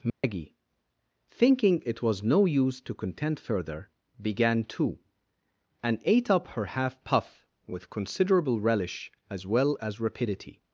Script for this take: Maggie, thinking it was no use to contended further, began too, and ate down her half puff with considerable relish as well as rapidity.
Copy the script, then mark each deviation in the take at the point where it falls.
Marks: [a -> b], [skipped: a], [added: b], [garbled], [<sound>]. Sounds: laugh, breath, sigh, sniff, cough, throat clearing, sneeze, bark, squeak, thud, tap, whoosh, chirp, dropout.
Maggie, [dropout] thinking it was no use to [contended -> contend] further, began too, and ate [down -> up] her half puff with considerable relish as well as rapidity.